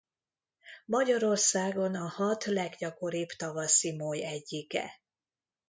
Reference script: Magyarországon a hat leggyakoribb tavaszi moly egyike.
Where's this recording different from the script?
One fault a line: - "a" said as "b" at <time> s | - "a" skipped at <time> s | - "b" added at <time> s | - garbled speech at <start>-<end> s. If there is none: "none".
none